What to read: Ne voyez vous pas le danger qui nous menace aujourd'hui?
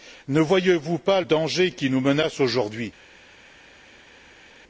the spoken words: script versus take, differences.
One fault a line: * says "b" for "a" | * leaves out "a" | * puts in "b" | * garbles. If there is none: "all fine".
* leaves out "le"